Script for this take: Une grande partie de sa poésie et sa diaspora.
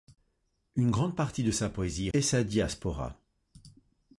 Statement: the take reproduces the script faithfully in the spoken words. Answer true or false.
true